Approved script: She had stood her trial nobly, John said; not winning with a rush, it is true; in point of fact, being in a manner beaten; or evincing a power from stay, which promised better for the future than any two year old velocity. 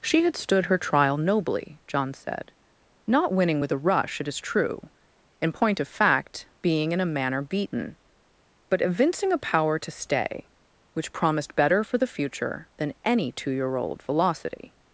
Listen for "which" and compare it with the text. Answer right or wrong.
right